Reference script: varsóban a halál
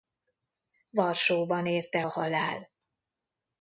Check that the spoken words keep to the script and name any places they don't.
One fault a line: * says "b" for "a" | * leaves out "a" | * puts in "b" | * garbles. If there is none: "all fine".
* puts in "érte"